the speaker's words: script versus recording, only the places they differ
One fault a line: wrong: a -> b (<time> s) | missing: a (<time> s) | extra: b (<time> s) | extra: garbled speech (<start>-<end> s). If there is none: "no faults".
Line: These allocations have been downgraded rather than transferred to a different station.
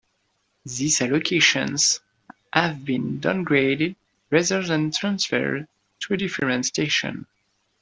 no faults